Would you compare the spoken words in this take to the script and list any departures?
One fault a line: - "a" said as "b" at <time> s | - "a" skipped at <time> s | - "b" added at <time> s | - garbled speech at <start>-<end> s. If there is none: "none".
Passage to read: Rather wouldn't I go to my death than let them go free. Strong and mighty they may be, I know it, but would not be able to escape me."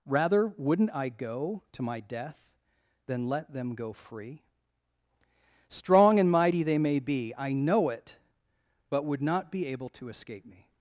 none